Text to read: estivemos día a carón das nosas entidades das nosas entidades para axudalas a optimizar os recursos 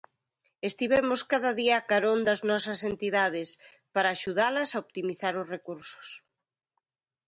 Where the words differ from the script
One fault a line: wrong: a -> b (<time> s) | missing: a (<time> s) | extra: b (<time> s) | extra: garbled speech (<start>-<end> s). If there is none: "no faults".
extra: cada (1.3 s)
missing: das nosas entidades (3.5 s)